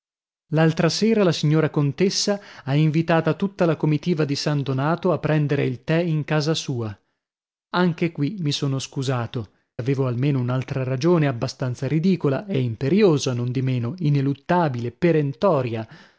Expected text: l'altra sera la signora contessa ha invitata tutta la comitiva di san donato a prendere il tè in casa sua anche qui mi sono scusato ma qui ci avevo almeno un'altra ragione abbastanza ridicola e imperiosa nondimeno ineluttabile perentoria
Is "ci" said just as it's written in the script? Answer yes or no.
no